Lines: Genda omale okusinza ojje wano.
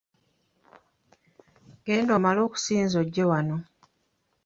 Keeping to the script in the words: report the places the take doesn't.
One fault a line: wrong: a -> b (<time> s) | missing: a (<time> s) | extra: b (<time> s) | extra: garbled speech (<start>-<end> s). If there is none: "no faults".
no faults